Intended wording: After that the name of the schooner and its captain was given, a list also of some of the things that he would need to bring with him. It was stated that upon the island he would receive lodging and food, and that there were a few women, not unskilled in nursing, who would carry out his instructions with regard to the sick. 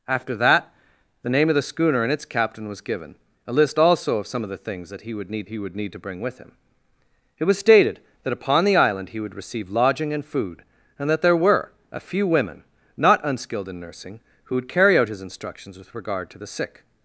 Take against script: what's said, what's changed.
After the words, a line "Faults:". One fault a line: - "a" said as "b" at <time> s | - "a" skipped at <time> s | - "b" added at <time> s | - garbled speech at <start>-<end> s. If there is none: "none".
After that the name of the schooner and its captain was given, a list also of some of the things that he would need he would need to bring with him. It was stated that upon the island he would receive lodging and food, and that there were a few women, not unskilled in nursing, who would carry out his instructions with regard to the sick.
Faults:
- "he would need" added at 5.5 s